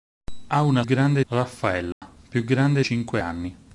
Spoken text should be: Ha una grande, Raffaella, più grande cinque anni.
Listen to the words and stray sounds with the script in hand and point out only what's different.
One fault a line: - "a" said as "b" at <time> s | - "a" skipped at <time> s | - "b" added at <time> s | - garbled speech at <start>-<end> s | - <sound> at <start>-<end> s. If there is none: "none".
- dropout at 1.9-2.0 s